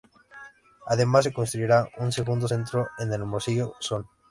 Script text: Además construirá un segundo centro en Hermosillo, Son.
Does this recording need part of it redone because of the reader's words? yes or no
yes